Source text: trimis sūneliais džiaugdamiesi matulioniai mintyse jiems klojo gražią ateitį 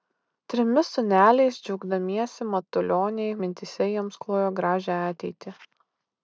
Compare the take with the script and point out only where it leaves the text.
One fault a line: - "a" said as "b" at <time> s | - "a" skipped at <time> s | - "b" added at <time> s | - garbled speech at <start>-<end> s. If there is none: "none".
none